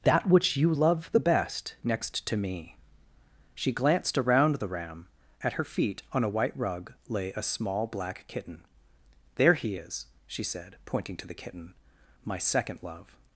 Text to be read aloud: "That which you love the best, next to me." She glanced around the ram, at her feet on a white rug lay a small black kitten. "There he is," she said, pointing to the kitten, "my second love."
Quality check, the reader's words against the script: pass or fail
pass